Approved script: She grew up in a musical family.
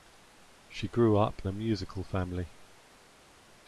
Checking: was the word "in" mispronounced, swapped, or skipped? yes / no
yes